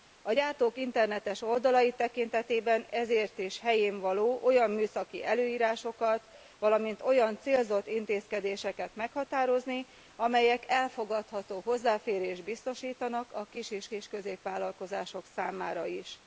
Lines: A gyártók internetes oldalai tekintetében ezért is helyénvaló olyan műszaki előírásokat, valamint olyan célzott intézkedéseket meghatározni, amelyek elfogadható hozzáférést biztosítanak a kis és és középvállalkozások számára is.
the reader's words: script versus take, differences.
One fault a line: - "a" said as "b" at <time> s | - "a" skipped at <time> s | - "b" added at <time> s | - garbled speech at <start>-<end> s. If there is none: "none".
none